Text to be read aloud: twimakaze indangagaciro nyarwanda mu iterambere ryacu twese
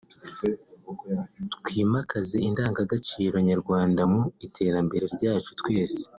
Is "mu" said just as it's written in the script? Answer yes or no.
yes